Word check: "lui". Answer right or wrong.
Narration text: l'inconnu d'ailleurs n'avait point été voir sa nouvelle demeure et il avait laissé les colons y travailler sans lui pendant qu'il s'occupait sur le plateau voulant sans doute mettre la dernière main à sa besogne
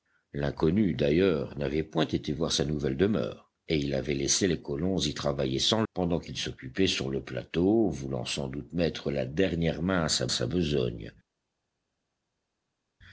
wrong